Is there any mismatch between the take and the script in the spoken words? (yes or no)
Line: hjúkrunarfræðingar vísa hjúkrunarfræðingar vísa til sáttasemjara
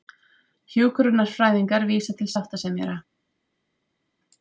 yes